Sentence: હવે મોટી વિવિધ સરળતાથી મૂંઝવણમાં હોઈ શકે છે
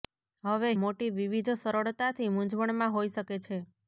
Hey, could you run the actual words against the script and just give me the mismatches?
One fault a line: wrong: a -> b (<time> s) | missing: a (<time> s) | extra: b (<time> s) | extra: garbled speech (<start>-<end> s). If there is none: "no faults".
no faults